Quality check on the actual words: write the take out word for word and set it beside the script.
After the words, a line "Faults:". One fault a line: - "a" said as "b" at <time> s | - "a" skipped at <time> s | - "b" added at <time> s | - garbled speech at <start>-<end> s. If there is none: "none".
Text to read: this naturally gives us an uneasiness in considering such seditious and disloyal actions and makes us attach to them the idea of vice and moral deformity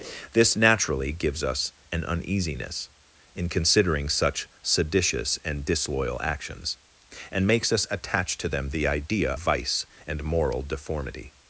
this naturally gives us an uneasiness in considering such seditious and disloyal actions and makes us attach to them the idea vice and moral deformity
Faults:
- "of" skipped at 9.3 s